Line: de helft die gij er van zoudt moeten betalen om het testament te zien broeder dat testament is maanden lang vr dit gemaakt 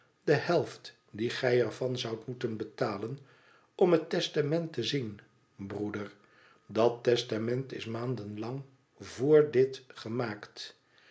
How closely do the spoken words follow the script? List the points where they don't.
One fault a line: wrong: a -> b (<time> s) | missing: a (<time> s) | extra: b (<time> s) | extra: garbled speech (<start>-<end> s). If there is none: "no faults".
no faults